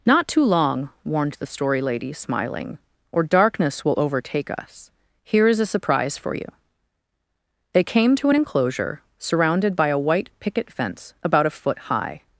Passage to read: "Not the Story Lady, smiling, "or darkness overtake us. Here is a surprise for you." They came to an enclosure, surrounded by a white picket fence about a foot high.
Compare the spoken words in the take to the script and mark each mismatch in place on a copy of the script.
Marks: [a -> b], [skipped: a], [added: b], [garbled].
"Not [added: too long warned] the Story Lady, smiling, "or darkness [added: will] overtake us. Here is a surprise for you." They came to an enclosure, surrounded by a white picket fence about a foot high.